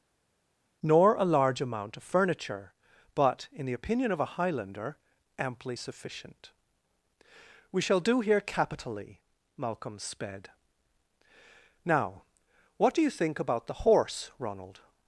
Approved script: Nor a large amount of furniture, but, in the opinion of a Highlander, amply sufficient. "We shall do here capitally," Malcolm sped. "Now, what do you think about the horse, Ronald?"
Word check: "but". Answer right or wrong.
right